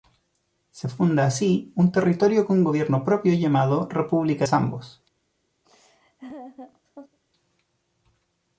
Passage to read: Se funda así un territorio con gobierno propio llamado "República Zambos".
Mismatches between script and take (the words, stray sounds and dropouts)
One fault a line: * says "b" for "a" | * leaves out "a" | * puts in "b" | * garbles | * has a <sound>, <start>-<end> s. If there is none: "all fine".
* has a laugh, 5.6-7.2 s